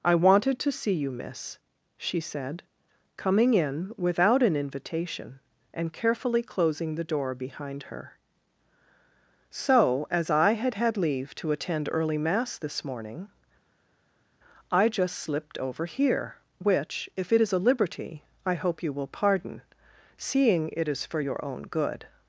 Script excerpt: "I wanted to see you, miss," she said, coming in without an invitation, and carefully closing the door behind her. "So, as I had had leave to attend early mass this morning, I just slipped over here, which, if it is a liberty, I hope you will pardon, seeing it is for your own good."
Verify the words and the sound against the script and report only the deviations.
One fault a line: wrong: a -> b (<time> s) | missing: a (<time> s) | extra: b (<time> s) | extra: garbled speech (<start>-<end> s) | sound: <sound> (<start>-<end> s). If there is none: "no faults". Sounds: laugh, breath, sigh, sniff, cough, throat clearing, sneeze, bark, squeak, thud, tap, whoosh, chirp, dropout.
no faults